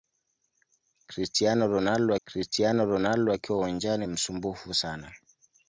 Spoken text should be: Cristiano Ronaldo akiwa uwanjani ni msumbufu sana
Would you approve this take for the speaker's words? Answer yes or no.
no